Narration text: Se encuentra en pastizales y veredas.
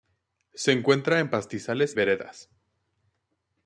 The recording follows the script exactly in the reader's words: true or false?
false